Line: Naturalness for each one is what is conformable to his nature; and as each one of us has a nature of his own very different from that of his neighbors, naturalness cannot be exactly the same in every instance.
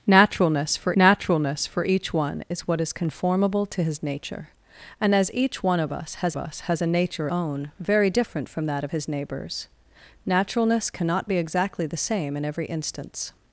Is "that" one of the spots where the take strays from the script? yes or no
no